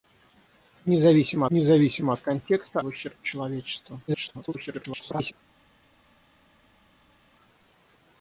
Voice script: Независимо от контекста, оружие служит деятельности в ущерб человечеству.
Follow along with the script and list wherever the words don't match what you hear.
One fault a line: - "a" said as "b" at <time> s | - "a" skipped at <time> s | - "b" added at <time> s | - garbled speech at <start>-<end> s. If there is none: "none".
- "независимо" added at 1.5 s
- "оружие служит деятельности" skipped at 2.8 s
- garbled speech at 4.1-5.3 s